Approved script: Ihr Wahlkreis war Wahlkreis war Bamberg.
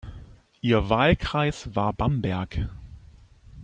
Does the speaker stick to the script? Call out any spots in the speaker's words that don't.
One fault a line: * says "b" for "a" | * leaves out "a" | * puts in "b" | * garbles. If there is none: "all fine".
* leaves out "Wahlkreis war"